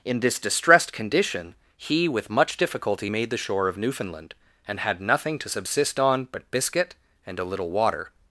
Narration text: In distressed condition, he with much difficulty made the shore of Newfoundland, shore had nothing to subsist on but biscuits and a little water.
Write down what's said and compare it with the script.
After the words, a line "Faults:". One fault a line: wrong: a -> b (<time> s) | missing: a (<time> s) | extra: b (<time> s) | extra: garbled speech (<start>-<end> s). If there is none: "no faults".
In this distressed condition, he with much difficulty made the shore of Newfoundland, and had nothing to subsist on but biscuit and a little water.
Faults:
extra: this (0.2 s)
wrong: shore -> and (4.7 s)
wrong: biscuits -> biscuit (6.5 s)